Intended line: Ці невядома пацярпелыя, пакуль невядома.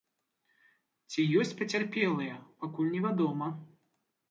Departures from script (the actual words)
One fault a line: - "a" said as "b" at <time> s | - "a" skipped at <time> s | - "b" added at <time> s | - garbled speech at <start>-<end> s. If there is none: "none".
- "невядома" said as "ёсць" at 1.4 s